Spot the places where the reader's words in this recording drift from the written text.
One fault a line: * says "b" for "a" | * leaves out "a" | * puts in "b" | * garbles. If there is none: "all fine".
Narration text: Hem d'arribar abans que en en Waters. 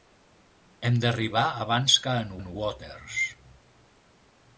all fine